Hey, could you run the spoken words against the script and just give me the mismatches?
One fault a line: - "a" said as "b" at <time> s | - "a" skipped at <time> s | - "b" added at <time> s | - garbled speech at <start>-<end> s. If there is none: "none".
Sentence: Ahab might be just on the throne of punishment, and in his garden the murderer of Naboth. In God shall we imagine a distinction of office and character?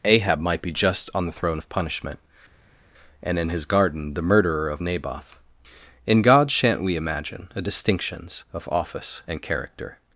- "shall" said as "shan't" at 6.5 s
- "distinction" said as "distinctions" at 7.6 s